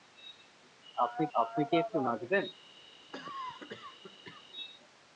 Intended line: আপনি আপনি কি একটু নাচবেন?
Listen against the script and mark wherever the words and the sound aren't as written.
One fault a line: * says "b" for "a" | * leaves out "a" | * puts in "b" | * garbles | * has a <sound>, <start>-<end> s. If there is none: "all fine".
* has a cough, 3.1-4.5 s